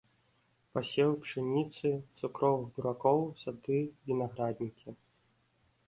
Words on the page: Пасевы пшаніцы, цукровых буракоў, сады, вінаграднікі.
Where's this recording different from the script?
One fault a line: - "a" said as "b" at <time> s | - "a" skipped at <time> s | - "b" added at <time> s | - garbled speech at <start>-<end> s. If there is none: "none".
none